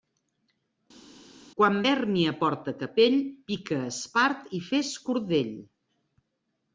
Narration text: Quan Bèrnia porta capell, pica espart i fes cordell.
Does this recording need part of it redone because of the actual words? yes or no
no